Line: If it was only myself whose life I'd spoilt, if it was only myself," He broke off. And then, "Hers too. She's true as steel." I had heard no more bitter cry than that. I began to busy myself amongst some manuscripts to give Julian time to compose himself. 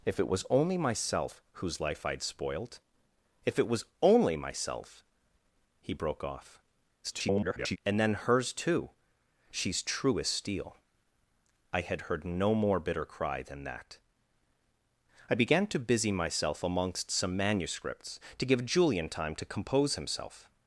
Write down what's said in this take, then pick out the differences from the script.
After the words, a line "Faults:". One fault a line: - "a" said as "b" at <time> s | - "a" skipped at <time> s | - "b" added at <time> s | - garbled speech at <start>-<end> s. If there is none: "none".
If it was only myself whose life I'd spoilt, if it was only myself," He broke off. [garbled] And then, "Hers too. She's true as steel." I had heard no more bitter cry than that. I began to busy myself amongst some manuscripts to give Julian time to compose himself.
Faults:
- garbled speech at 7.0-7.8 s